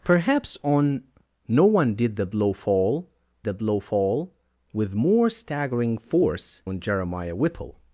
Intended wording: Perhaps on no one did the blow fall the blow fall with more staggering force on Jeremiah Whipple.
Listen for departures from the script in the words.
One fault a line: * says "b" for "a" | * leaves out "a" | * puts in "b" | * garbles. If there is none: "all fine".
all fine